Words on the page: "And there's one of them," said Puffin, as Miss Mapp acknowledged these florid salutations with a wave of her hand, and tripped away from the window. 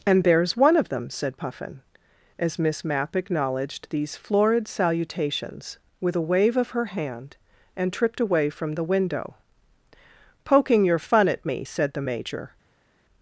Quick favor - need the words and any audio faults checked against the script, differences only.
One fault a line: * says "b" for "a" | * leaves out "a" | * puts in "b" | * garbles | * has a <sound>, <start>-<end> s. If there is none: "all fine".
* puts in "Poking your fun at me said the Major"